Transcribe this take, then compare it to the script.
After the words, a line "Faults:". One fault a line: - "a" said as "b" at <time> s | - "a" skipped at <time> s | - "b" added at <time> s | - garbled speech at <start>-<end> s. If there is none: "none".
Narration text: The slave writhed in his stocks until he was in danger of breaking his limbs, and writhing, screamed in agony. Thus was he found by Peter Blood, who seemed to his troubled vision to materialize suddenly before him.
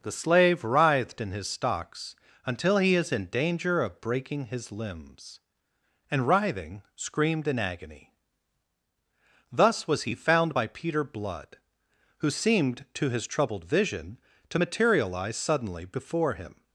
The slave writhed in his stocks until he is in danger of breaking his limbs, and writhing, screamed in agony. Thus was he found by Peter Blood, who seemed to his troubled vision to materialize suddenly before him.
Faults:
- "was" said as "is" at 3.0 s